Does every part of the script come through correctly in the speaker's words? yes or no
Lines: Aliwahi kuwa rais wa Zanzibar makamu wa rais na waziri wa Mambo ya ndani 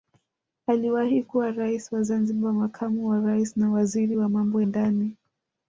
no